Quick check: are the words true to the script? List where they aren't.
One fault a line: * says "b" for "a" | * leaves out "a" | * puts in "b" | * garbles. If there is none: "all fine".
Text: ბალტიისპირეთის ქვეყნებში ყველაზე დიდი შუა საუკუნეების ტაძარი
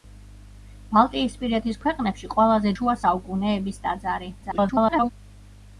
* leaves out "დიდი"
* garbles